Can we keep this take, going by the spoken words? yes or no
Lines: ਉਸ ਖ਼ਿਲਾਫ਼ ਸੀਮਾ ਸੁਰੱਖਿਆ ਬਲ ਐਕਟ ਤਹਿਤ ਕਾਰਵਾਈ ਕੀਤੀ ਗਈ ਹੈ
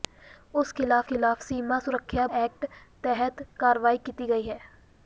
no